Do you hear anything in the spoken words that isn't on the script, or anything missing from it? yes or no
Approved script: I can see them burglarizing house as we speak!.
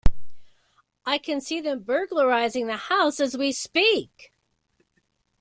yes